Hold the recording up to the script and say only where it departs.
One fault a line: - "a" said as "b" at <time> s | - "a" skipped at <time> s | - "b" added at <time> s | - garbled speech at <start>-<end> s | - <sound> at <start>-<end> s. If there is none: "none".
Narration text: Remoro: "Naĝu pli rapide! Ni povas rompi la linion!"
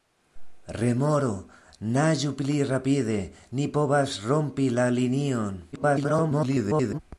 - garbled speech at 5.7-7.0 s